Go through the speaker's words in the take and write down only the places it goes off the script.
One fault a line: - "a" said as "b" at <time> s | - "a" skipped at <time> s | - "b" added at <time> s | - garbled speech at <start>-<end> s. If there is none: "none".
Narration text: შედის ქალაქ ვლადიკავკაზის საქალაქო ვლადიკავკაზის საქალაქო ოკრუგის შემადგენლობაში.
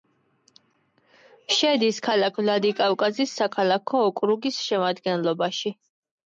- "ვლადიკავკაზის საქალაქო" skipped at 4.1 s